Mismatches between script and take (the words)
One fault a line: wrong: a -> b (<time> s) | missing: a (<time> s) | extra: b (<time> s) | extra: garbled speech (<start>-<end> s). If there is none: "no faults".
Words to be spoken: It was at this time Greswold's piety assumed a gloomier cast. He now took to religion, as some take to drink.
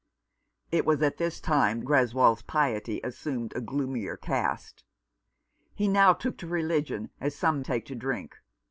no faults